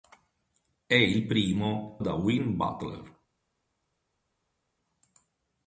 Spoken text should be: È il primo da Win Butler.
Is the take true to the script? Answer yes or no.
yes